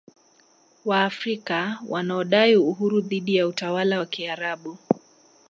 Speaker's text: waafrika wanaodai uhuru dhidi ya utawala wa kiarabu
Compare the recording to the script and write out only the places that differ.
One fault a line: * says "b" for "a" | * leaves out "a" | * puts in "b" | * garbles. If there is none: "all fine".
all fine